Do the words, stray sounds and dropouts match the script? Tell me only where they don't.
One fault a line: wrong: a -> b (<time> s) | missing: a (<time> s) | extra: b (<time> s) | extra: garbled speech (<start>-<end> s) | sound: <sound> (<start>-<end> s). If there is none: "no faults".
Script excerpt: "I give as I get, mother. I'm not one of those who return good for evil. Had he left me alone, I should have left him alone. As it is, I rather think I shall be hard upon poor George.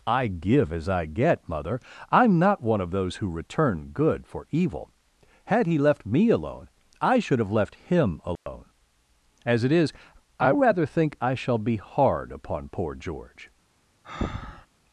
sound: dropout (8.4-8.5 s)
sound: breath (14.0-14.7 s)